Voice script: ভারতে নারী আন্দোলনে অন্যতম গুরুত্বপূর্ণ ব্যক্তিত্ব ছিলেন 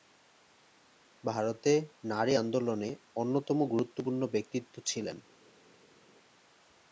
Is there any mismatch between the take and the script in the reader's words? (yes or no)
no